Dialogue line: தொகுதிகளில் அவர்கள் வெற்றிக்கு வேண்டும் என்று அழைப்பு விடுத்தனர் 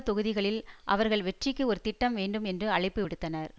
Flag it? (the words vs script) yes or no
yes